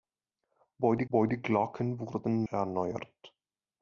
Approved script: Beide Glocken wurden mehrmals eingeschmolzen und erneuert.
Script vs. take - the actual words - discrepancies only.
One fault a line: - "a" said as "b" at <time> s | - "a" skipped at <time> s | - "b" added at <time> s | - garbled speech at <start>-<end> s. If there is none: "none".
- "beide" added at 1.1 s
- "mehrmals eingeschmolzen und" skipped at 2.5 s